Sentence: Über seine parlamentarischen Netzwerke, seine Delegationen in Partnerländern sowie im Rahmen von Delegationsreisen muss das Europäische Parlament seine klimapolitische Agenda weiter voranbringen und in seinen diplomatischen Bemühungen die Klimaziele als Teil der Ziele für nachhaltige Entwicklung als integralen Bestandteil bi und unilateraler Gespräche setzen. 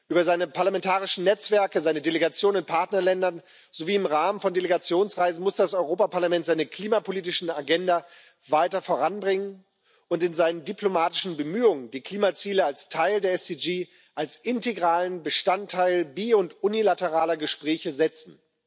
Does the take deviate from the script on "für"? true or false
false